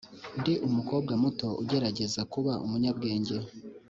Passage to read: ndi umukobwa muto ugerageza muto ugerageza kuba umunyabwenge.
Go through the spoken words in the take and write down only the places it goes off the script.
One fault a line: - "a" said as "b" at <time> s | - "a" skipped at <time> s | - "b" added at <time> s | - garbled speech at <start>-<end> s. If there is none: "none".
- "muto ugerageza" skipped at 2.2 s